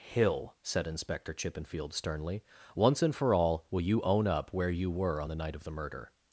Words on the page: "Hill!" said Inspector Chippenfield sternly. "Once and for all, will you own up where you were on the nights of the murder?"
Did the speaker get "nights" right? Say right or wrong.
wrong